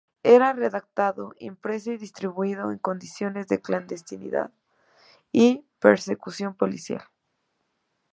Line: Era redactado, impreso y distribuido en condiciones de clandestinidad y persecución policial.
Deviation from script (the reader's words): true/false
false